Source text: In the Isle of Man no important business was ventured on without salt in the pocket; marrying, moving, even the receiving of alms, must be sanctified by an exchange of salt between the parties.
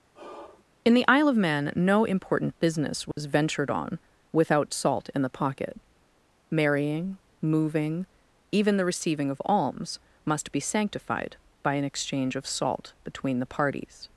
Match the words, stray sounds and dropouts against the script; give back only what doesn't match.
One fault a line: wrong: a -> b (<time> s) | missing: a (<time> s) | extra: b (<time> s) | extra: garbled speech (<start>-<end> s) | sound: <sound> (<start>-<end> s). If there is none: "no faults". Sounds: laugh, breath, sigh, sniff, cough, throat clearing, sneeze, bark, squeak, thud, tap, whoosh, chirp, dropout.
sound: sigh (0.1-0.6 s)
sound: dropout (3.1-3.2 s)